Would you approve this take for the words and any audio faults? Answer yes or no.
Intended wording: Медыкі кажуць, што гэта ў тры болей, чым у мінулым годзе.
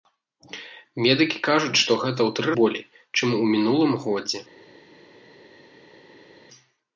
yes